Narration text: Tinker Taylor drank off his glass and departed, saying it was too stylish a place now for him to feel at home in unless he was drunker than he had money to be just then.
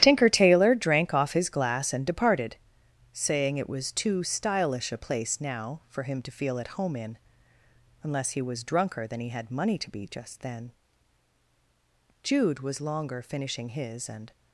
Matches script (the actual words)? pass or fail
fail